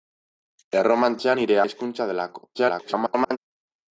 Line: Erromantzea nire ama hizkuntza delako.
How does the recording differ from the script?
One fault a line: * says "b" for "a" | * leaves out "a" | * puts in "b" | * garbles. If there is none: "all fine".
* leaves out "ama"
* garbles